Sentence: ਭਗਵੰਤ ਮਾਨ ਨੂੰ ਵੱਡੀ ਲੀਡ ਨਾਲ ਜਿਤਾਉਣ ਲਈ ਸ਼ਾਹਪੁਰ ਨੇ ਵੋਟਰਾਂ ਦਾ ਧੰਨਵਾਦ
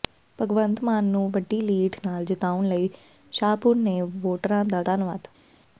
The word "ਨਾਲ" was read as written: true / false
true